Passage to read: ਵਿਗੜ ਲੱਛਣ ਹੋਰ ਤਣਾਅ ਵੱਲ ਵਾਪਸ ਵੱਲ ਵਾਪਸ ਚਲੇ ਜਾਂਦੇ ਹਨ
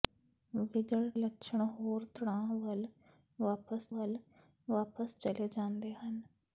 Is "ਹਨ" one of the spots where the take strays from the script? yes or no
no